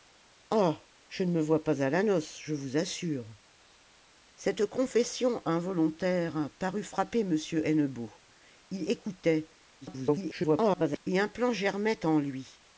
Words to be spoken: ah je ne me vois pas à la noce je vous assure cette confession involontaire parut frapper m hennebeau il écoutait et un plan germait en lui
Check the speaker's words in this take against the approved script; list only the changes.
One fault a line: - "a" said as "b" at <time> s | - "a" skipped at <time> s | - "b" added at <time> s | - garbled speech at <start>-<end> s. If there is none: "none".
- garbled speech at 9.8-11.0 s